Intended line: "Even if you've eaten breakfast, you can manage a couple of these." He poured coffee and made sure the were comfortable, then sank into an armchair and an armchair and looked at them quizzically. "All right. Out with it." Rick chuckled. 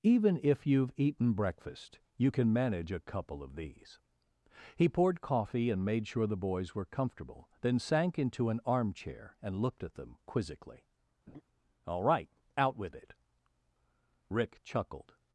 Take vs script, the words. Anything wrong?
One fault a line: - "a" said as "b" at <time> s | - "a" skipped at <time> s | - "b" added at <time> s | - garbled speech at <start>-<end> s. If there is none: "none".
- "boys" added at 6.4 s
- "an armchair and" skipped at 9.6 s